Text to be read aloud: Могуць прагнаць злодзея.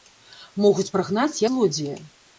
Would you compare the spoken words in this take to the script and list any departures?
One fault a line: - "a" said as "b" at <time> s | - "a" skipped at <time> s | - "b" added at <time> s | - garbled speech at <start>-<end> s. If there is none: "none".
none